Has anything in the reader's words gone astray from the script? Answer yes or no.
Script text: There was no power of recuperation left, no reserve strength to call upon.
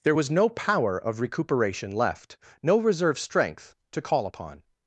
no